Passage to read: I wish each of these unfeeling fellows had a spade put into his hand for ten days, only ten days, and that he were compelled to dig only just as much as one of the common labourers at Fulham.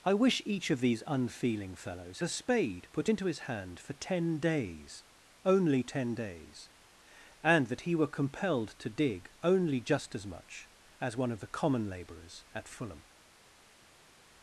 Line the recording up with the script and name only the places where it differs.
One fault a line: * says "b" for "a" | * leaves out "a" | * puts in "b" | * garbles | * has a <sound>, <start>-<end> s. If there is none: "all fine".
* leaves out "had"